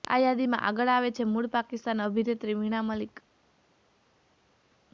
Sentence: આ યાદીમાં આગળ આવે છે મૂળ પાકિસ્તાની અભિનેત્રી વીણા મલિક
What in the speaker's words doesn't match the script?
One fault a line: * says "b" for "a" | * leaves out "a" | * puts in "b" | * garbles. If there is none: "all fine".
all fine